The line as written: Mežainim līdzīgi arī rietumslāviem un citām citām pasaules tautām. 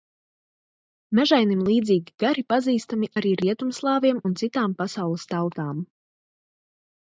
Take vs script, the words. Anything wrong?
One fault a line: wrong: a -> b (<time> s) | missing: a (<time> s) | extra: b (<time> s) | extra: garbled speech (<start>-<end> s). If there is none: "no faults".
extra: gari pazīstami (2.2 s)
missing: citām (4.8 s)